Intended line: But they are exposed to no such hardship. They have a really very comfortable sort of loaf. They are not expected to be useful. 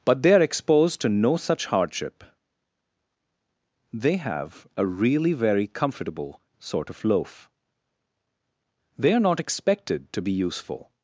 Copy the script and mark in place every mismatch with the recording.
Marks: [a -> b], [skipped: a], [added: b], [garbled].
But they are exposed to no such hardship. They have a really very comfortable sort of loaf. They are not expected to be useful.